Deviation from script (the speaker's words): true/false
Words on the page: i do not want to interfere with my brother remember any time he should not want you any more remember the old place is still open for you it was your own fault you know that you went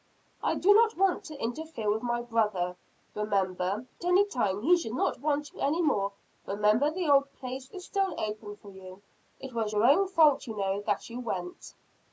false